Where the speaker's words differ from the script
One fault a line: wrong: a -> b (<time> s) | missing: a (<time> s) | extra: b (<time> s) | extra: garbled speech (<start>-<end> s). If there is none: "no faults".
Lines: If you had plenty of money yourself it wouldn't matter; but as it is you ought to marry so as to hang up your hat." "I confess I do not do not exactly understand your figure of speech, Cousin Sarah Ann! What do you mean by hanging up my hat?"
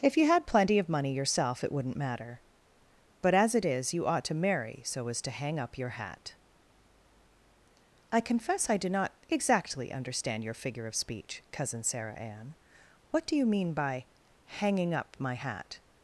missing: do not (9.1 s)